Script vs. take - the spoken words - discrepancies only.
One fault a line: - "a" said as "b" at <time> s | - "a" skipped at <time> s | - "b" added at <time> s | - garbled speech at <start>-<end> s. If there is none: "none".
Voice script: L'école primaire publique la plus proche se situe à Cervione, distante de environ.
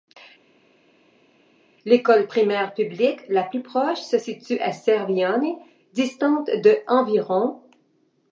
none